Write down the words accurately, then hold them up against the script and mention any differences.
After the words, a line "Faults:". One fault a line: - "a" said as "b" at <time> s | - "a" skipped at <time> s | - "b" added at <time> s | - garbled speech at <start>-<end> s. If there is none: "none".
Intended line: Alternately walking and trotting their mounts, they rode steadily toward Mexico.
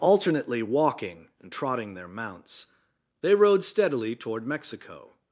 Alternately walking and trotting their mounts, they rode steadily toward Mexico.
Faults:
none